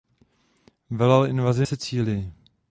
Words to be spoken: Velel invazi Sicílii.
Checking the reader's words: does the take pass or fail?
pass